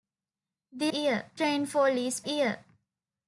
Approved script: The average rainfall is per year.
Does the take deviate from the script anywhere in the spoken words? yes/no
yes